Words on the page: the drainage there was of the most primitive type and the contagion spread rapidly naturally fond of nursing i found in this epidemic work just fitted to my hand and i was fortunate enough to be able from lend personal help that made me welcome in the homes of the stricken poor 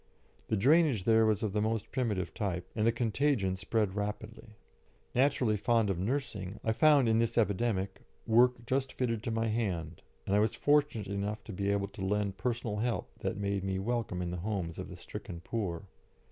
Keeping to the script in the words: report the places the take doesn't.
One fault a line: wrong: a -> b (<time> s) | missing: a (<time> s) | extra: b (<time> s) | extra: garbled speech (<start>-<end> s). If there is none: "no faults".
wrong: from -> to (11.9 s)